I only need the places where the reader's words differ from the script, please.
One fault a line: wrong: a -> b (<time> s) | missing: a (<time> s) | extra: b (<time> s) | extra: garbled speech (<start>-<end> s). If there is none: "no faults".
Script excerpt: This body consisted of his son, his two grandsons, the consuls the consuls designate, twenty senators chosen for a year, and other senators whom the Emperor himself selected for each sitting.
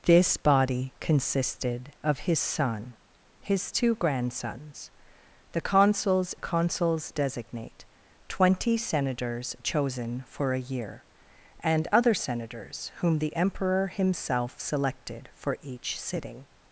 no faults